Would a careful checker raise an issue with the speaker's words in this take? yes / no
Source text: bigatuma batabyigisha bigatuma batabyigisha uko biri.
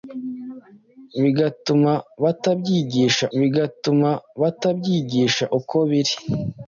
no